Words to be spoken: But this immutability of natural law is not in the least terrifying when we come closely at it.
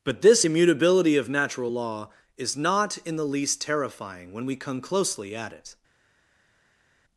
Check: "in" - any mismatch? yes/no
no